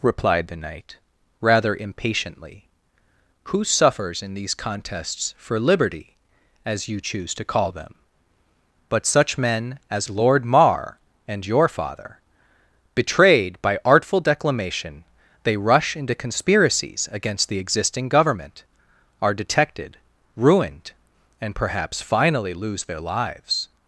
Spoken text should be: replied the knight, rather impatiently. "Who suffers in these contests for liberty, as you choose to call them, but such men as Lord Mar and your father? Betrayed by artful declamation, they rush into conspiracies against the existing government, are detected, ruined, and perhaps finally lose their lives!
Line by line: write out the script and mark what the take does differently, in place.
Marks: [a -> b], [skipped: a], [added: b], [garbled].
replied the knight, rather impatiently. "Who suffers in these contests for liberty, as you choose to call them, but such men as Lord Mar and your father? Betrayed by artful declamation, they rush into conspiracies against the existing government, are detected, ruined, and perhaps finally lose their lives!